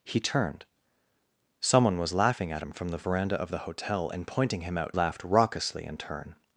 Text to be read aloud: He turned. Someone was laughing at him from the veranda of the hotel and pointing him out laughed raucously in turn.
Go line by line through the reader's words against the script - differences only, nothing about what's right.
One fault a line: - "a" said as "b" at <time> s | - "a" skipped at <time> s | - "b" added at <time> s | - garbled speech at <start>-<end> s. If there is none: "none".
none